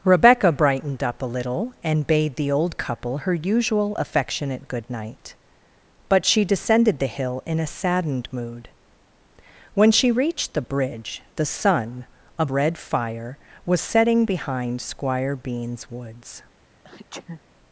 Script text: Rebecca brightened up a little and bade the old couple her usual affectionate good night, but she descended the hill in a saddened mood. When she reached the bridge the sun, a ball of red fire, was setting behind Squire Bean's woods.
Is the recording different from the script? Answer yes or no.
yes